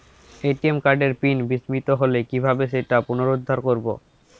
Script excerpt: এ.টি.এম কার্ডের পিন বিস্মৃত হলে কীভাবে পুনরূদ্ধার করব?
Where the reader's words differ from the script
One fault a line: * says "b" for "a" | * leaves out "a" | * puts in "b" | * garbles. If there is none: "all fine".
* puts in "সেটা"